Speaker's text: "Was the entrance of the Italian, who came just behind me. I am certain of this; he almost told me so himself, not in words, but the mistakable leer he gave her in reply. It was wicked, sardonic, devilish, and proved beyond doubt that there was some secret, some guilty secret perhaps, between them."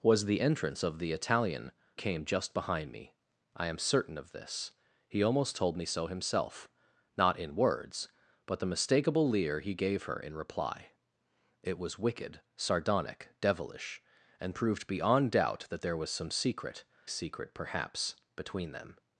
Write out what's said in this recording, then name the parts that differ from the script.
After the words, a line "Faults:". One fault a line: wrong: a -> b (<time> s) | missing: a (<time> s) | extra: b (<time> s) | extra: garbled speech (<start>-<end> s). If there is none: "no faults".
"Was the entrance of the Italian, came just behind me. I am certain of this; he almost told me so himself, not in words, but the mistakable leer he gave her in reply. It was wicked, sardonic, devilish, and proved beyond doubt that there was some secret, secret perhaps, between them."
Faults:
missing: who (1.7 s)
missing: some guilty (16.8 s)